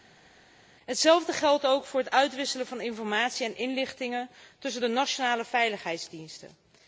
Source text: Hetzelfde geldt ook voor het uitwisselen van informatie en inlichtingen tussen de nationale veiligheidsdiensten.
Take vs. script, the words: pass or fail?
pass